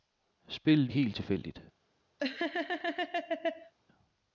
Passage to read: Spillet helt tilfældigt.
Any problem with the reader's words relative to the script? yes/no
no